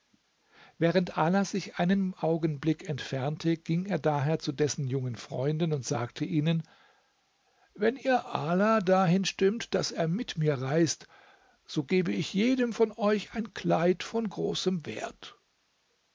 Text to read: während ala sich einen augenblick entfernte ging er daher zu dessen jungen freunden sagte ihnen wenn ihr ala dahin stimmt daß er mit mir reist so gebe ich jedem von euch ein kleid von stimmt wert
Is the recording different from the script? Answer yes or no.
yes